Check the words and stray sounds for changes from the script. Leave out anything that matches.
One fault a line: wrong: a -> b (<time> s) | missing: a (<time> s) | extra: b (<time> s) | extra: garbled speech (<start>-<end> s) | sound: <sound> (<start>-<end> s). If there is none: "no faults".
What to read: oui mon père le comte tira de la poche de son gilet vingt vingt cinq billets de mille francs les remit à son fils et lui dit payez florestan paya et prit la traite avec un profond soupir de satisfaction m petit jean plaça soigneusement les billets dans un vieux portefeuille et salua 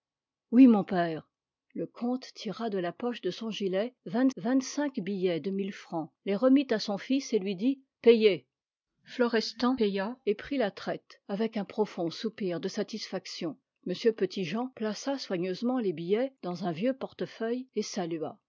no faults